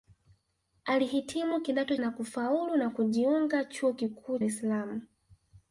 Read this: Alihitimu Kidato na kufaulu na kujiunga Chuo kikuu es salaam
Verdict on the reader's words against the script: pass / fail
pass